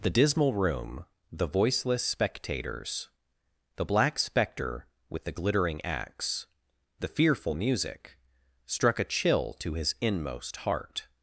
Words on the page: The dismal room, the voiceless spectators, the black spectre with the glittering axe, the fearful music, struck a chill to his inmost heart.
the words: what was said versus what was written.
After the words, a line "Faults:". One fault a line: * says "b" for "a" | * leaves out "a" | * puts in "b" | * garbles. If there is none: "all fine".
The dismal room, the voiceless spectators, the black spectre with the glittering axe, the fearful music, struck a chill to his inmost heart.
Faults:
all fine